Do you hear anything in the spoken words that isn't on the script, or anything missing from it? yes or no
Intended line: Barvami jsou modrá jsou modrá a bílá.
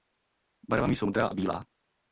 yes